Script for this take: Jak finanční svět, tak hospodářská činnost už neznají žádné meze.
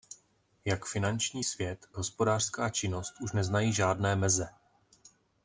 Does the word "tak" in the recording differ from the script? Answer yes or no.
yes